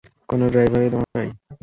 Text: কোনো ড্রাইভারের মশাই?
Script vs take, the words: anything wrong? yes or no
no